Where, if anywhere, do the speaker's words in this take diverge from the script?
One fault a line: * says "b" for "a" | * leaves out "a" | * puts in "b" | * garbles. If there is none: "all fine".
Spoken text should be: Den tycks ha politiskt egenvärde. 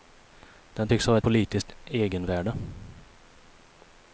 all fine